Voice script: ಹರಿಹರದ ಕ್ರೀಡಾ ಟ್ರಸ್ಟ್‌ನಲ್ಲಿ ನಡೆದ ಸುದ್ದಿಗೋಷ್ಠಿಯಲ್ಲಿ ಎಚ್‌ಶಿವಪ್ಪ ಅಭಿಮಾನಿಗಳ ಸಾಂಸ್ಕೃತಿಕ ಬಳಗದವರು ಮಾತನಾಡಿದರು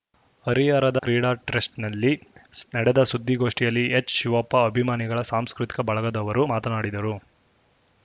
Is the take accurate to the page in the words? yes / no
yes